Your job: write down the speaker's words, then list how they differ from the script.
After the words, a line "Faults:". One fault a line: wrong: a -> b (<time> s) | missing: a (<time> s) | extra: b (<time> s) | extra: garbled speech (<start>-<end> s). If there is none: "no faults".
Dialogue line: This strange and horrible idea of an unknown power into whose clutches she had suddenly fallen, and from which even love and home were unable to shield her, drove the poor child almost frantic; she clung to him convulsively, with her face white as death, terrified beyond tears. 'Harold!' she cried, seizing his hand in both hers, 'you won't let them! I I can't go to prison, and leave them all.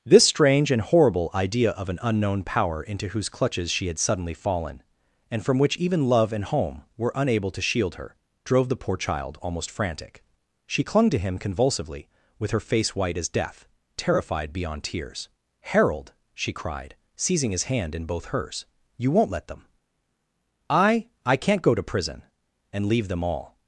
This strange and horrible idea of an unknown power into whose clutches she had suddenly fallen, and from which even love and home were unable to shield her, drove the poor child almost frantic; she clung to him convulsively, with her face white as death, terrified beyond tears. 'Harold!' she cried, seizing his hand in both hers, 'you won't let them! I I can't go to prison, and leave them all.
Faults:
no faults